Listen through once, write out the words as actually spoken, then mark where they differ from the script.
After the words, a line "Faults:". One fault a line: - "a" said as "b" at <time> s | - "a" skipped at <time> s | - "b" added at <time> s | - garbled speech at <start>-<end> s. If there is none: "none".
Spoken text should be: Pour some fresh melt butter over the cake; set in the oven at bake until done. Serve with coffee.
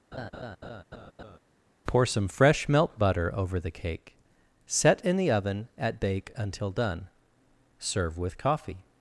Pour some fresh melt butter over the cake; set in the oven at bake until done. Serve with coffee.
Faults:
none